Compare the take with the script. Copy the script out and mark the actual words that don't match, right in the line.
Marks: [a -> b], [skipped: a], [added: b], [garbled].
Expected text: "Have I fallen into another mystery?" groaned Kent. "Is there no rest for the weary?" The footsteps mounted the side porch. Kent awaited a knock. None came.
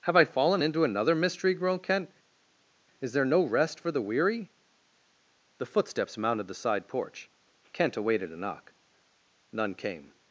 "Have I fallen into another mystery?" groaned Kent. "Is there no rest for the weary?" The footsteps mounted the side porch. Kent awaited a knock. None came.